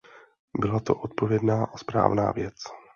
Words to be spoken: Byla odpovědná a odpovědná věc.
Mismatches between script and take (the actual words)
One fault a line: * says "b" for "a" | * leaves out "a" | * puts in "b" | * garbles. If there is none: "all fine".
* puts in "to"
* says "správná" for "odpovědná"